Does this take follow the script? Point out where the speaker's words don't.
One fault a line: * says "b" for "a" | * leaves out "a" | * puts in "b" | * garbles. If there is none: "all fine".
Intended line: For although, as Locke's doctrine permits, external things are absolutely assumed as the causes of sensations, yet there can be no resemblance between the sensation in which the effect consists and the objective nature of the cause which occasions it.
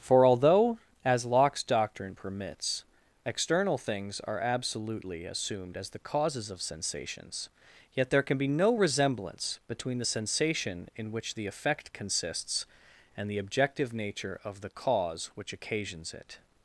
all fine